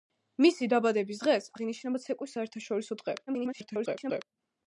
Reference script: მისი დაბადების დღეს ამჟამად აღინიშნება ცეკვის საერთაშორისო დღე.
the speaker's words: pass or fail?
fail